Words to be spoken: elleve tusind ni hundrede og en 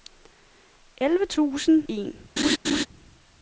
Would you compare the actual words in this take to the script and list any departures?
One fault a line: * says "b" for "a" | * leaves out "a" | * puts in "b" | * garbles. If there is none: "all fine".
* leaves out "ni hundrede og"